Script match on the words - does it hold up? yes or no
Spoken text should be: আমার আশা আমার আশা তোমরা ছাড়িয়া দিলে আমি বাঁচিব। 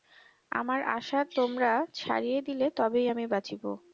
no